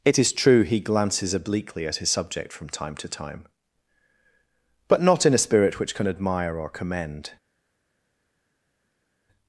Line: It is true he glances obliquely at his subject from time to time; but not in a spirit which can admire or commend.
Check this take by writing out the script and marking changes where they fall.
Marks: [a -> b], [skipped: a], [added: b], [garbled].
It is true he glances obliquely at his subject from time to time; but not in a spirit which can admire or commend.